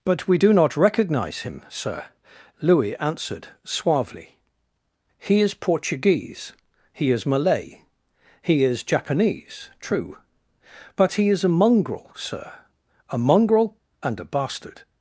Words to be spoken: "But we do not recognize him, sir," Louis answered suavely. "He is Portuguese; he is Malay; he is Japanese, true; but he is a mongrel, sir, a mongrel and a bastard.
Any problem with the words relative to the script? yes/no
no